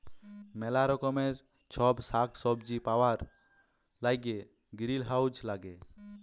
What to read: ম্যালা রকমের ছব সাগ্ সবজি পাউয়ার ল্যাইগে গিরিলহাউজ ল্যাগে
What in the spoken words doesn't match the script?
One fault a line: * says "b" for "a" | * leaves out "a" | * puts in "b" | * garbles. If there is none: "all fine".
all fine